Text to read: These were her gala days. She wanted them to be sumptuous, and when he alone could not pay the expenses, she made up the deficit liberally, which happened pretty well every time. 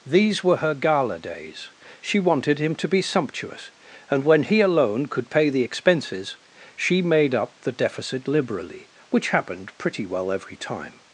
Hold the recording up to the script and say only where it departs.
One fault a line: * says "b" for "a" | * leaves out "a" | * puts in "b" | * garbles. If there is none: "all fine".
* says "him" for "them"
* leaves out "not"